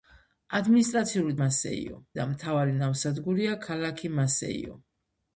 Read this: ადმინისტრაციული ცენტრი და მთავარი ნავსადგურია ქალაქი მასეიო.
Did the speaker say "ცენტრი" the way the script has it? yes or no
no